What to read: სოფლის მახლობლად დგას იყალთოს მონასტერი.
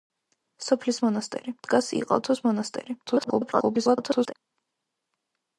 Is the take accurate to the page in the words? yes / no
no